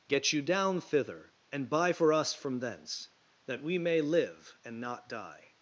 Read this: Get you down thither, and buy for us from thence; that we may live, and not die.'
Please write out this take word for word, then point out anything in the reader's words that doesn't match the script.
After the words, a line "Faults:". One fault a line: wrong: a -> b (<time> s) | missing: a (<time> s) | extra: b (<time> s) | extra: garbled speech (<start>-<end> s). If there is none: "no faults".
Get you down thither, and buy for us from thence; that we may live, and not die.'
Faults:
no faults